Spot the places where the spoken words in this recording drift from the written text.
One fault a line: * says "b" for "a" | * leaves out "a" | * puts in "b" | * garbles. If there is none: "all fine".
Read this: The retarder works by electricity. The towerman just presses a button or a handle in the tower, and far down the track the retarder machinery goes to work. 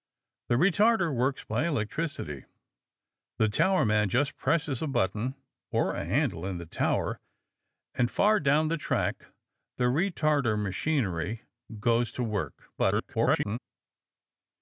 * garbles